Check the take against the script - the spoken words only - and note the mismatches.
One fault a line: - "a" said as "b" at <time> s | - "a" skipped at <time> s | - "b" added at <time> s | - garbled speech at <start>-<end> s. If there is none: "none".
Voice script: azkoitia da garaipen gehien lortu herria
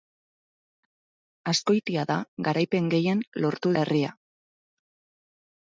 none